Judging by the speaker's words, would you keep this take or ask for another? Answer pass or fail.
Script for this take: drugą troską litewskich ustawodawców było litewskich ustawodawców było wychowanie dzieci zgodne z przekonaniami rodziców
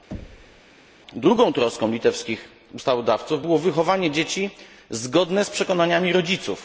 fail